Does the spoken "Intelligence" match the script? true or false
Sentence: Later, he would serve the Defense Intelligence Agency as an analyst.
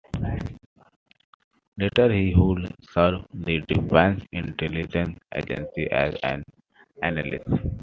true